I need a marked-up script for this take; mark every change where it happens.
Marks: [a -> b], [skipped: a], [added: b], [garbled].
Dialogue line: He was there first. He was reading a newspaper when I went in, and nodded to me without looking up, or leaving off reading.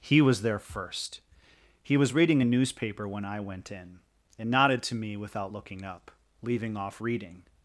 He was there first. He was reading a newspaper when I went in, and nodded to me without looking up, [skipped: or] leaving off reading.